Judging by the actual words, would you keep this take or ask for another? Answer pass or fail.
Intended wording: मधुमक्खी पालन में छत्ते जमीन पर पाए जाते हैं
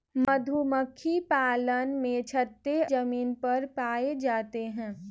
pass